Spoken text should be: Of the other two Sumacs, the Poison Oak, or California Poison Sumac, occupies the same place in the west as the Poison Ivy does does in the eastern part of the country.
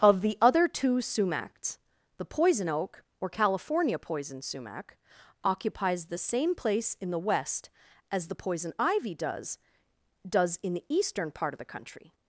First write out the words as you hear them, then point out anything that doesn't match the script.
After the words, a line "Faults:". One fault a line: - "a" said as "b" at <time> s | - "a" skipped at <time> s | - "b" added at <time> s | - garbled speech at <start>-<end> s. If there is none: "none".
Of the other two Sumacs, the Poison Oak, or California Poison Sumac, occupies the same place in the west as the Poison Ivy does does in the eastern part of the country.
Faults:
none